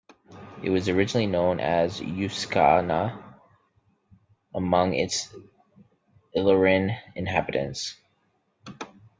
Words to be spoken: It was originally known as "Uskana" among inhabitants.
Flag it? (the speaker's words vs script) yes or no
yes